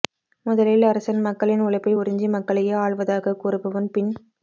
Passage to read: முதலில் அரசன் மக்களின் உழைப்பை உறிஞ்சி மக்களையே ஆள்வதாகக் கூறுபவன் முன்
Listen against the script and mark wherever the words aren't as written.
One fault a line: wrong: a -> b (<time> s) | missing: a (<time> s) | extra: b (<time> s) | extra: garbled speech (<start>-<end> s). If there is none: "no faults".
wrong: முன் -> பின் (3.9 s)